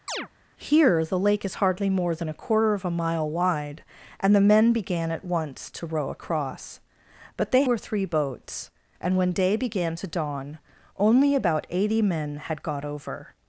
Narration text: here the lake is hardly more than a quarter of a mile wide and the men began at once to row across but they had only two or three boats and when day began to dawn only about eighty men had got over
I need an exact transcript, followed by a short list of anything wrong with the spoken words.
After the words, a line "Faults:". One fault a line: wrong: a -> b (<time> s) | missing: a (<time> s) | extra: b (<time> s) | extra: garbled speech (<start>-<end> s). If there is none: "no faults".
here the lake is hardly more than a quarter of a mile wide and the men began at once to row across but they or three boats and when day began to dawn only about eighty men had got over
Faults:
missing: had only two (7.6 s)